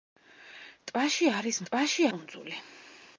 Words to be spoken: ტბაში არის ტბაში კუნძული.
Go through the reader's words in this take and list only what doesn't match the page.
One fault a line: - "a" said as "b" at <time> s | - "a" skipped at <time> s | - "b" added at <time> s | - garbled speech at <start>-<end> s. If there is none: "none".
none